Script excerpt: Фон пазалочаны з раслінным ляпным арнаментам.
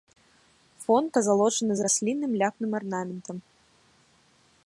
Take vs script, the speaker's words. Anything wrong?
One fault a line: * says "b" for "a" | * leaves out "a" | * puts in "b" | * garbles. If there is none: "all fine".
all fine